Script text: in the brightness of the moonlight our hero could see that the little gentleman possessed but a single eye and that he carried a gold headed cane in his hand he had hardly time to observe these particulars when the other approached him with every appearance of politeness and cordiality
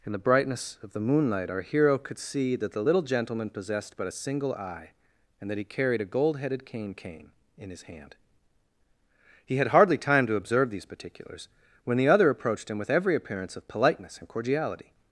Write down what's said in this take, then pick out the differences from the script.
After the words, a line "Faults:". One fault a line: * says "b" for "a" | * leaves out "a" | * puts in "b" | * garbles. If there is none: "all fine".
in the brightness of the moonlight our hero could see that the little gentleman possessed but a single eye and that he carried a gold headed cane cane in his hand he had hardly time to observe these particulars when the other approached him with every appearance of politeness and cordiality
Faults:
* puts in "cane"